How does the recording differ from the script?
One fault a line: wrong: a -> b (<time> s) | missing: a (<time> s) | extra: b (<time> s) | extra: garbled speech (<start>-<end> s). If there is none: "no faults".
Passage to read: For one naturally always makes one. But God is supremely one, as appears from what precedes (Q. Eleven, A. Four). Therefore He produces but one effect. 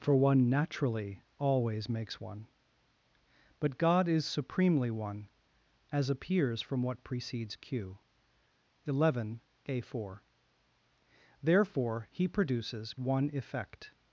missing: but (12.9 s)